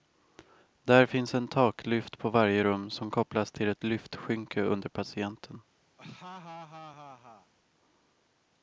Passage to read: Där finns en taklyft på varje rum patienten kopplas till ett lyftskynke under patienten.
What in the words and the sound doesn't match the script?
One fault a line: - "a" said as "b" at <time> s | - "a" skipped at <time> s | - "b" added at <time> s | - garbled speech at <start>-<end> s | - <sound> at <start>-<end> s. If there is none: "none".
- "patienten" said as "som" at 2.9 s
- laugh at 6.0-7.5 s